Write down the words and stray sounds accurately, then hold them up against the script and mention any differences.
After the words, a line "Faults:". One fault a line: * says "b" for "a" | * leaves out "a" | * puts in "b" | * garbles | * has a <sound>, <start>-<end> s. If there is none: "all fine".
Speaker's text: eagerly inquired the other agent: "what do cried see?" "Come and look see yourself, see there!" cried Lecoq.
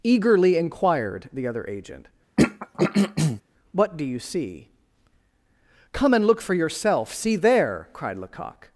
eagerly inquired the other agent: "what do you see?" "Come and look for yourself, see there!" cried Lecoq.
Faults:
* has a throat clearing, 2.4-3.4 s
* says "you" for "cried"
* says "for" for "see"